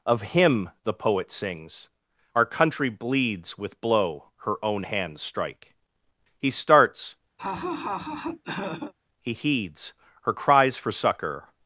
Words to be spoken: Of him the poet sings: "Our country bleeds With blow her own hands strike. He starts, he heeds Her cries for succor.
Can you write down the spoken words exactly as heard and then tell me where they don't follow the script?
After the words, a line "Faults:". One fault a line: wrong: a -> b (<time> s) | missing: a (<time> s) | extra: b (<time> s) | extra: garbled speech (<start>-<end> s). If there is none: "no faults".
Of him the poet sings: "Our country bleeds With blow her own hands strike. He starts, he heeds Her cries for succor.
Faults:
no faults